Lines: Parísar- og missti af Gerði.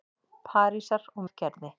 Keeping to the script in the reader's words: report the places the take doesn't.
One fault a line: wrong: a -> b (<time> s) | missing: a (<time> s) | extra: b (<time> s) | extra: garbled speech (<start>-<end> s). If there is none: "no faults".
missing: missti (1.2 s)